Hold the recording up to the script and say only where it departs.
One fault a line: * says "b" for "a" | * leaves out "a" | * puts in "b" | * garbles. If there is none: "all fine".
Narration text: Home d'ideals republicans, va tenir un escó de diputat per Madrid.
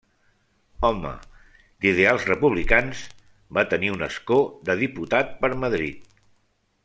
all fine